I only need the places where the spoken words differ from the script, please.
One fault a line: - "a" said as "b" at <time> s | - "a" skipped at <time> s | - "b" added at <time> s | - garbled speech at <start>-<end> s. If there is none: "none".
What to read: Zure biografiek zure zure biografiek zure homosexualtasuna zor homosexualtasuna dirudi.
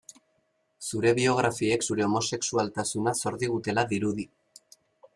- "zure biografiek zure" skipped at 2.1 s
- "homosexualtasuna" said as "digutela" at 3.4 s